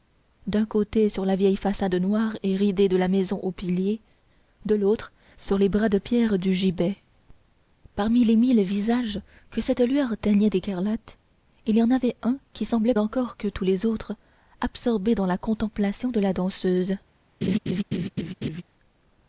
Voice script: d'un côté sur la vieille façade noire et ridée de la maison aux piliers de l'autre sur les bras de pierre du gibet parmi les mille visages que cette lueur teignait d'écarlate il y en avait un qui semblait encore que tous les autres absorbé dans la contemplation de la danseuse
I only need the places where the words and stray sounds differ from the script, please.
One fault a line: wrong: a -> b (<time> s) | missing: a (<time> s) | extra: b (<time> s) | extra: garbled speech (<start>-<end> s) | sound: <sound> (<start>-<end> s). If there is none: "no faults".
sound: laugh (17.4-18.6 s)